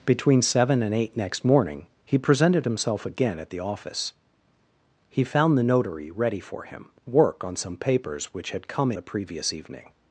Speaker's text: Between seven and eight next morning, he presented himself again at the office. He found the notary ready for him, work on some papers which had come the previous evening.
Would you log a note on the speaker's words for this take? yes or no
no